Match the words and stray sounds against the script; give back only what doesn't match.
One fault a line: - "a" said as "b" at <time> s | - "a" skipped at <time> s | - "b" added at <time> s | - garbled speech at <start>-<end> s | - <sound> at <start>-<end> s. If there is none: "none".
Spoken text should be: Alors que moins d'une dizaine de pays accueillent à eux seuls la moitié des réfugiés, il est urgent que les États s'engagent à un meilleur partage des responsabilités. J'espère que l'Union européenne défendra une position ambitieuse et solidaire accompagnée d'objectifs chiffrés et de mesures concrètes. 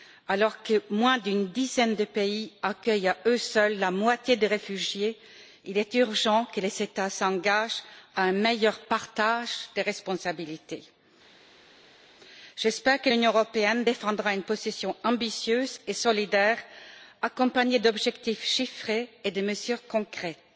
none